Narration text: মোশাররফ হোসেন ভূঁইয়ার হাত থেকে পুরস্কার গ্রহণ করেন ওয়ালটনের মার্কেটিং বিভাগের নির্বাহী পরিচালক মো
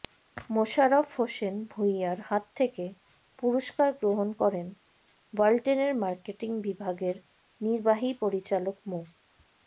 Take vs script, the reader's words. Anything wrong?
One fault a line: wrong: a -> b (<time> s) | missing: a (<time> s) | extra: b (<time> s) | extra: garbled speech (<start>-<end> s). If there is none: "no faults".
no faults